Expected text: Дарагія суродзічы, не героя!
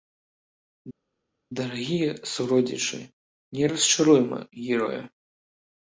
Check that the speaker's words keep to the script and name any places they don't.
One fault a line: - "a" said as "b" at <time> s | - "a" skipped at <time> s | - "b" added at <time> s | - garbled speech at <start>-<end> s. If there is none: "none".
- "расчаруйма" added at 3.7 s